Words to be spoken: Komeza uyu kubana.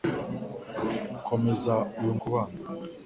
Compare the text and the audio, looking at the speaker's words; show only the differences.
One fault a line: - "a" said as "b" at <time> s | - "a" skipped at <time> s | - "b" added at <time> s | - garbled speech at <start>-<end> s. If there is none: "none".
none